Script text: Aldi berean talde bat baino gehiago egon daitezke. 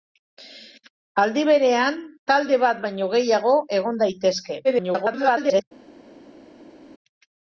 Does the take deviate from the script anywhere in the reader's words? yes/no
yes